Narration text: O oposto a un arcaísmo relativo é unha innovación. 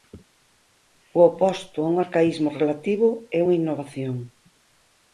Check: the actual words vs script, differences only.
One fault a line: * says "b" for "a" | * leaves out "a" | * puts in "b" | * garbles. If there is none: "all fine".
all fine